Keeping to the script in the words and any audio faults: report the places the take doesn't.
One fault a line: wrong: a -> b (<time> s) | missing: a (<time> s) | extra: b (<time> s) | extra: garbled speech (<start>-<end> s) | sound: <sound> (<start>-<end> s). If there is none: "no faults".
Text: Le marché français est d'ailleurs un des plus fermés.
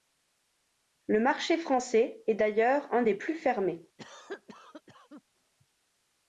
sound: cough (4.0-5.2 s)